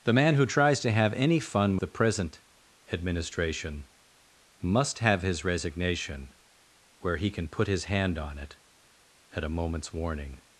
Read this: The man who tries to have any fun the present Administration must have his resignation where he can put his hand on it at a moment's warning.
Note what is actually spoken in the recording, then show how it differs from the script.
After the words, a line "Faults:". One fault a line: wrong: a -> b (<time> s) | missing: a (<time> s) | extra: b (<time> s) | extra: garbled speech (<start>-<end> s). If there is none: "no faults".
The man who tries to have any fun the present Administration must have his resignation where he can put his hand on it at a moment's warning.
Faults:
no faults